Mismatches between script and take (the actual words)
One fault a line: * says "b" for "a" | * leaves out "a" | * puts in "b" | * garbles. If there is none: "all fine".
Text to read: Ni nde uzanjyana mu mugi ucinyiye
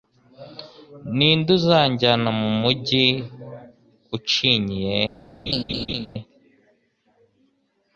all fine